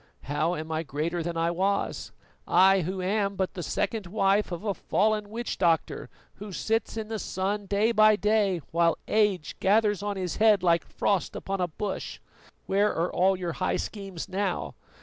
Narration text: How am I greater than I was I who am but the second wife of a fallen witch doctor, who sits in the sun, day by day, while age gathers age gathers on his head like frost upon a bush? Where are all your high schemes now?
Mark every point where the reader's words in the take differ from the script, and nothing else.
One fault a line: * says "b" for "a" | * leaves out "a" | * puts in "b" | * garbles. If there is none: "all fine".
* leaves out "age gathers"